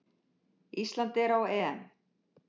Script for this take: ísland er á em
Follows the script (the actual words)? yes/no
yes